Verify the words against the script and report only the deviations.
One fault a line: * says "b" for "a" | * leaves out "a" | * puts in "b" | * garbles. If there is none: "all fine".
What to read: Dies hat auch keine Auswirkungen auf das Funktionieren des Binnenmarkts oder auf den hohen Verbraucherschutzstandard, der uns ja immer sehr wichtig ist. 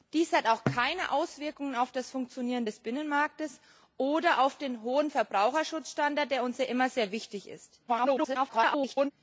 * garbles